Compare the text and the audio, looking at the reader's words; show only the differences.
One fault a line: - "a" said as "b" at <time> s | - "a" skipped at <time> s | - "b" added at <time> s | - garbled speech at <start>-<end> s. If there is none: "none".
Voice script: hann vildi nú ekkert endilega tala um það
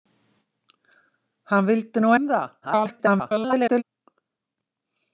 - "ekkert endilega tala" skipped at 2.1 s
- garbled speech at 2.6-3.8 s